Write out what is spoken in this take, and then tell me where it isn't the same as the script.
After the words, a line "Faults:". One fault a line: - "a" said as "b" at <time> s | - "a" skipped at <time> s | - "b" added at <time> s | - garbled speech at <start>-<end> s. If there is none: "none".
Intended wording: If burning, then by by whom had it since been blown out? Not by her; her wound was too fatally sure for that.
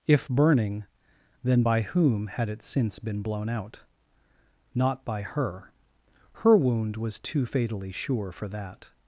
If burning, then by whom had it since been blown out? Not by her; her wound was too fatally sure for that.
Faults:
- "by" skipped at 1.8 s